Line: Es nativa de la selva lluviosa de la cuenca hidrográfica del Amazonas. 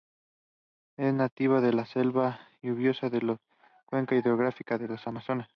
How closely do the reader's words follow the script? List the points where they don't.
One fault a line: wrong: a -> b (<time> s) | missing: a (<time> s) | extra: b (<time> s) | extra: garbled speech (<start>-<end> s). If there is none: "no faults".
no faults